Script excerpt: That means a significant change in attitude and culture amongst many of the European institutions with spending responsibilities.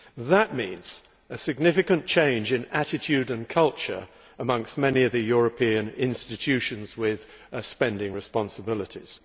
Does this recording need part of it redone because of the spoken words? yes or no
no